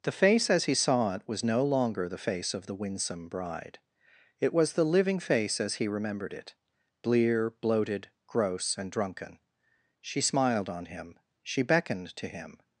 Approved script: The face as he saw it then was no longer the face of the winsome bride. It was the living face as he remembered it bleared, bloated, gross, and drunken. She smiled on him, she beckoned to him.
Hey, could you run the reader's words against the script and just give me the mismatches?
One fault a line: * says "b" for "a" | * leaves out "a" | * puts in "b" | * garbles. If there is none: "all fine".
* leaves out "then"
* says "blear" for "bleared"